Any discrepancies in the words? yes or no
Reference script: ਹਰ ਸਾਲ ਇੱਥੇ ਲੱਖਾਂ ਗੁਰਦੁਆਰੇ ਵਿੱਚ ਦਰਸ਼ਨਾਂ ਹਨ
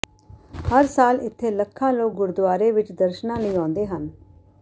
yes